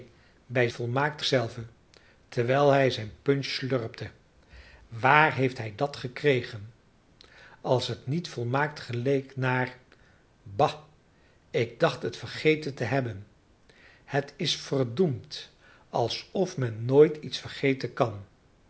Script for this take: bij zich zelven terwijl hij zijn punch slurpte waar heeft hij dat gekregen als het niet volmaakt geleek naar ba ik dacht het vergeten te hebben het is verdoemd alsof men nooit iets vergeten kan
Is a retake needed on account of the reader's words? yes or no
yes